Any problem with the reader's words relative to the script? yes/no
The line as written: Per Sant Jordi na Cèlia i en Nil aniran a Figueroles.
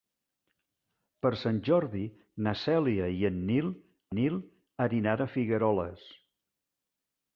yes